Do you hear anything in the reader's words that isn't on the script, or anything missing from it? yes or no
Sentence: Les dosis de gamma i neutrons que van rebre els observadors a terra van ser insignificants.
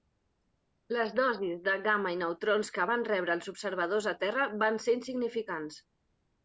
no